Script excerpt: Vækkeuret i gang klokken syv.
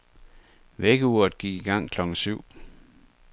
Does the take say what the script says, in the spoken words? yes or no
no